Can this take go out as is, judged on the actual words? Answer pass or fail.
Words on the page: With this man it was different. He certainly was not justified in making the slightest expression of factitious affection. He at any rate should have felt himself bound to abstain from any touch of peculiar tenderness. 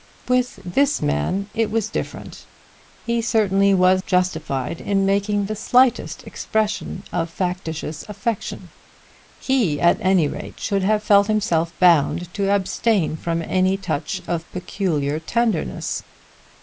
fail